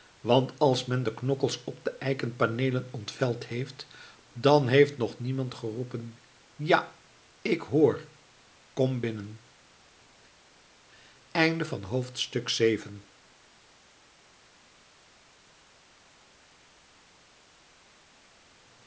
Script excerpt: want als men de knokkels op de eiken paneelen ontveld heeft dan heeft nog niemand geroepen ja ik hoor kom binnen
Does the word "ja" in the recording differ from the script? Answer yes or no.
no